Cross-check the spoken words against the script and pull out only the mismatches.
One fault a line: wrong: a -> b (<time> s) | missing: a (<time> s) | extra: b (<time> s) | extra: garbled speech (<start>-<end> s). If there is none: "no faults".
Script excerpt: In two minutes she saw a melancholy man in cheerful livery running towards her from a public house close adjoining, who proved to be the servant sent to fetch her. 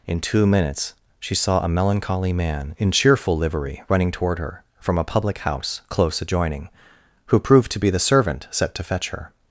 wrong: towards -> toward (4.1 s)
wrong: sent -> set (8.5 s)